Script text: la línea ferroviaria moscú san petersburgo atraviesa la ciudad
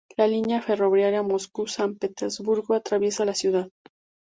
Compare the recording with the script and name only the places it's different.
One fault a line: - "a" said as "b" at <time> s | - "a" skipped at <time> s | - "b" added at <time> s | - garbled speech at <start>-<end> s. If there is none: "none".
none